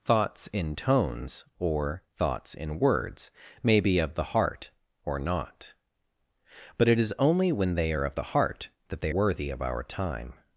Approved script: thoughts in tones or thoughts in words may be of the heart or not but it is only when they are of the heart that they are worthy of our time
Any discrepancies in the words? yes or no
yes